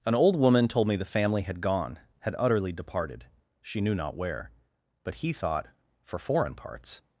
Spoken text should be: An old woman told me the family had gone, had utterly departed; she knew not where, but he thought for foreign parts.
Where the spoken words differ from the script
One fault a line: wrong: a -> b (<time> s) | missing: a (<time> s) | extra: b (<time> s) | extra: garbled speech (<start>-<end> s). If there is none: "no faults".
no faults